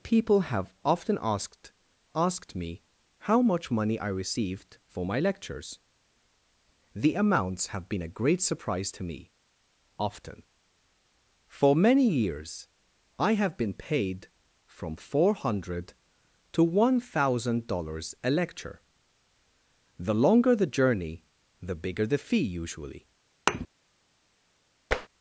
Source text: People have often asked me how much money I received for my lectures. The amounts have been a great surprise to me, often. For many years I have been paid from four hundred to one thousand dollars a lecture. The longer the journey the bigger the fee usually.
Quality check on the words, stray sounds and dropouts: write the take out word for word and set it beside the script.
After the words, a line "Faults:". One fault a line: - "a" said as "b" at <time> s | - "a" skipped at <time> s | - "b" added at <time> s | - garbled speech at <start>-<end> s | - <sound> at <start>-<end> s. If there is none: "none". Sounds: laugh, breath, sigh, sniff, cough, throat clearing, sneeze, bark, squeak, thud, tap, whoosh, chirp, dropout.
People have often asked asked me how much money I received for my lectures. The amounts have been a great surprise to me, often. For many years I have been paid from four hundred to one thousand dollars a lecture. The longer the journey the bigger the fee usually.
Faults:
- "asked" added at 2.1 s
- thud at 23.5-23.7 s
- tap at 24.9-25.1 s